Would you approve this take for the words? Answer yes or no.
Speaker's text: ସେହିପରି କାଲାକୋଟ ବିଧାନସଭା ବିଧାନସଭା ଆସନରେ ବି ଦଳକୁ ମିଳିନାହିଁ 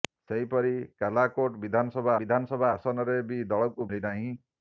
yes